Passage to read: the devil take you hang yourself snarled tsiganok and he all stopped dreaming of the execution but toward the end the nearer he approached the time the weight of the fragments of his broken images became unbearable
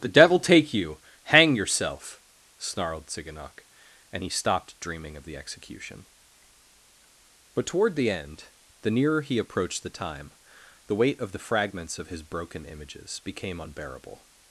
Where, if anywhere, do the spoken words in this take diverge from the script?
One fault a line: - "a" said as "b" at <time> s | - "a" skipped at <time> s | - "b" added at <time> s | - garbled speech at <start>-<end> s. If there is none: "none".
- "all" skipped at 4.3 s